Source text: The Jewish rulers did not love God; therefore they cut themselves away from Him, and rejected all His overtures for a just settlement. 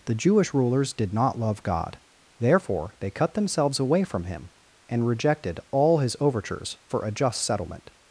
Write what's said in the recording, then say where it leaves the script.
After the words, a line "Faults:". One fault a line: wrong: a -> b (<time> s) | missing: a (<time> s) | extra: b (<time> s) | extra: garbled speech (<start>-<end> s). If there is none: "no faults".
The Jewish rulers did not love God; therefore they cut themselves away from Him, and rejected all His overtures for a just settlement.
Faults:
no faults